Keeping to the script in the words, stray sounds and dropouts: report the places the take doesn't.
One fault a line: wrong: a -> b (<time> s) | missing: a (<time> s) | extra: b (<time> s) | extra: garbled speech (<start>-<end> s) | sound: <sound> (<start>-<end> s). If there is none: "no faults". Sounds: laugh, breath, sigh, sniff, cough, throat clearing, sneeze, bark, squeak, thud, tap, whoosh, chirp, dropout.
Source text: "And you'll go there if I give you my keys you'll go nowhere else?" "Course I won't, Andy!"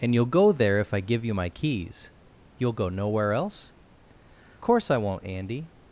no faults